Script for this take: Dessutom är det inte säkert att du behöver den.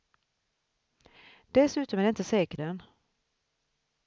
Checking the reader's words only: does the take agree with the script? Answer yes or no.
no